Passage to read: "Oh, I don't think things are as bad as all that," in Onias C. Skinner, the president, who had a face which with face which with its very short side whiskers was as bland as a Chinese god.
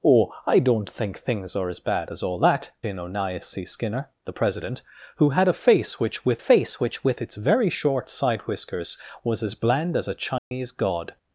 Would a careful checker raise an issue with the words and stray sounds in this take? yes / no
yes